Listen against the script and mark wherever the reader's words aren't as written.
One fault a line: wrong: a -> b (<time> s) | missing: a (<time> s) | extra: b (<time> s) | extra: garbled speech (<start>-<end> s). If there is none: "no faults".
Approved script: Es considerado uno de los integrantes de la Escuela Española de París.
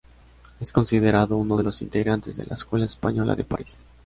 no faults